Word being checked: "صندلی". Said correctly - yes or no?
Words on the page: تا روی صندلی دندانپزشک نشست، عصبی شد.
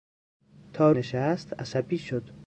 no